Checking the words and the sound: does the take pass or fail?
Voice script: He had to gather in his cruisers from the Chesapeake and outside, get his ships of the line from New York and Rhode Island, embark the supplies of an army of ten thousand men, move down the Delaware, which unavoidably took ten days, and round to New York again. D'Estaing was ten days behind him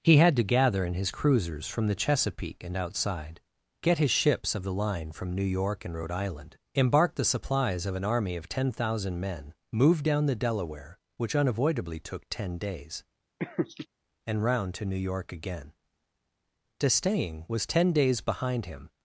fail